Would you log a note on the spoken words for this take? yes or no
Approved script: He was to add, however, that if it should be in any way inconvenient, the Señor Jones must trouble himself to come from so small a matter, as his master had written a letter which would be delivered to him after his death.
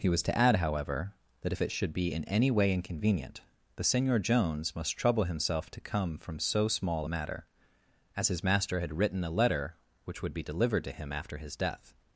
no